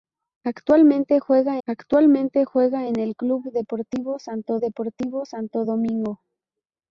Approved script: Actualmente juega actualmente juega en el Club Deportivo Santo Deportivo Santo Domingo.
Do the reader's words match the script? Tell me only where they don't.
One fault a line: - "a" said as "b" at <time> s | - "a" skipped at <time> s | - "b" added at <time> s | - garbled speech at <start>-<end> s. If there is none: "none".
none